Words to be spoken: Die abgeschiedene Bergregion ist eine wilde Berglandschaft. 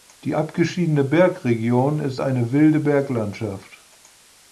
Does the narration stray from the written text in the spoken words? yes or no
no